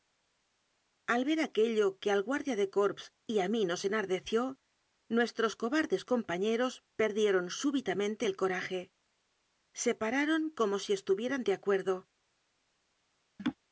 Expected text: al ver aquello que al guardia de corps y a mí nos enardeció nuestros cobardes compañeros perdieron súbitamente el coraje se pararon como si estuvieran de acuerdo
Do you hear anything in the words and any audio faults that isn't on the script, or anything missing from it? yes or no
yes